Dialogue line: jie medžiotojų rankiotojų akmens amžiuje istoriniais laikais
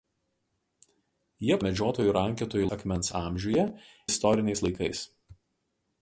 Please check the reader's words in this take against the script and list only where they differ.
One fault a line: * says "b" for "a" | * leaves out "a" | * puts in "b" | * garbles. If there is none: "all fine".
all fine